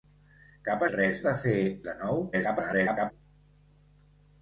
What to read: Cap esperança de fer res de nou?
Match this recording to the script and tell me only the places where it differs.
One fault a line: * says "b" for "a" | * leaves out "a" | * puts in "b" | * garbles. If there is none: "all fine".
* says "res" for "esperança"
* leaves out "res"
* garbles